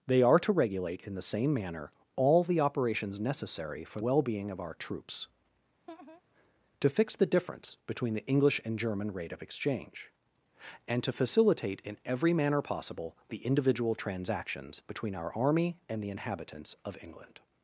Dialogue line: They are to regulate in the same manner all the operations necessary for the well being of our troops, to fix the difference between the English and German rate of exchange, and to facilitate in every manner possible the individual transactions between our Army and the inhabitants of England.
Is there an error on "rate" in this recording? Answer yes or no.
no